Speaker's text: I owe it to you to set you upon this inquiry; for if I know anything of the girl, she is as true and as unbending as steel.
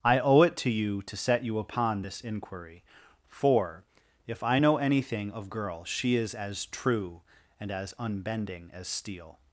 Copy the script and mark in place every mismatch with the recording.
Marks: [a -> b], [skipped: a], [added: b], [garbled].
I owe it to you to set you upon this inquiry; for if I know anything of [skipped: the] girl, she is as true and as unbending as steel.